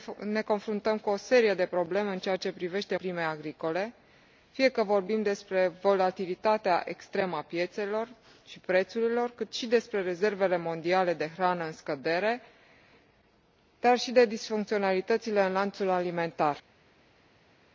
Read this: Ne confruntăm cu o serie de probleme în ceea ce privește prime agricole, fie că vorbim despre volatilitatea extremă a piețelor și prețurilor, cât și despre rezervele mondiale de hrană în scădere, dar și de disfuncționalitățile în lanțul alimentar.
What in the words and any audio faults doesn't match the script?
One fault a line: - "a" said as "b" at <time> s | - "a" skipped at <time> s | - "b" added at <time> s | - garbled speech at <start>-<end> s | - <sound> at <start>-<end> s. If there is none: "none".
none